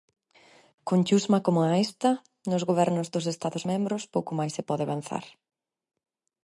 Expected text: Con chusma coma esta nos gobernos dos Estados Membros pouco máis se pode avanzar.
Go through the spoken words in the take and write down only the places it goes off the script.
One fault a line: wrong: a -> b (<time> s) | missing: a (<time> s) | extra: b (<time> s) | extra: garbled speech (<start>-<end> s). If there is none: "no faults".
no faults